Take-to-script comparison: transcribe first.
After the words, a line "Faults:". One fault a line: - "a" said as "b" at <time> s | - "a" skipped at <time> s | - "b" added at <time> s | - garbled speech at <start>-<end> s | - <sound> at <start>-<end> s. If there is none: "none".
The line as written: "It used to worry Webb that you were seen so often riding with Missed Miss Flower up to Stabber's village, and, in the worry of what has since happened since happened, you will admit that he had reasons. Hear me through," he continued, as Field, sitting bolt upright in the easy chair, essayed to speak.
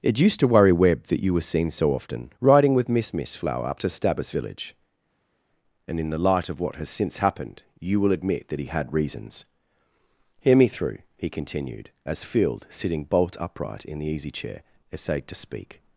"It used to worry Webb that you were seen so often riding with Miss Miss Flower up to Stabber's village, and, in the light of what has since happened, you will admit that he had reasons. Hear me through," he continued, as Field, sitting bolt upright in the easy chair, essayed to speak.
Faults:
- "Missed" said as "Miss" at 2.9 s
- "worry" said as "light" at 6.2 s
- "since happened" skipped at 7.6 s